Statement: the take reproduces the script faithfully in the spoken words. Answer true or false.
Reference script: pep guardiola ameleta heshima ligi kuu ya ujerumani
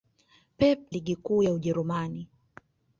false